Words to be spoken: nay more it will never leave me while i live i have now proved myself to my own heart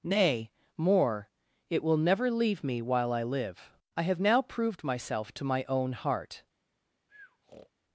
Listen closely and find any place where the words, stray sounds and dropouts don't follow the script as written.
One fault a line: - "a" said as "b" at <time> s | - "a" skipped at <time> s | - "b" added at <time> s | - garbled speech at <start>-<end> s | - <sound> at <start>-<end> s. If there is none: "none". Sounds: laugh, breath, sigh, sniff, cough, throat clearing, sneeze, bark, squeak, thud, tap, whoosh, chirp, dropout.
- breath at 7.1-7.7 s